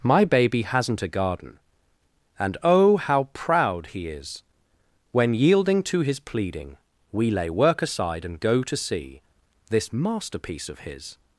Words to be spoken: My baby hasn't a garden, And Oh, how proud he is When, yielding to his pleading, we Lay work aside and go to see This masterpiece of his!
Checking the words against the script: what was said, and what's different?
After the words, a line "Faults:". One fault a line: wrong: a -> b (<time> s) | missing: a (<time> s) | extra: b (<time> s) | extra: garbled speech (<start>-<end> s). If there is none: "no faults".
My baby hasn't a garden, And Oh, how proud he is When, yielding to his pleading, we Lay work aside and go to see This masterpiece of his!
Faults:
no faults